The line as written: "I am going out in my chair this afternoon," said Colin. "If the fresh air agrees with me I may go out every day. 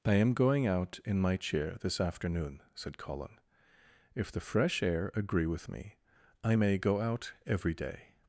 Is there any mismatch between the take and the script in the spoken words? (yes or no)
yes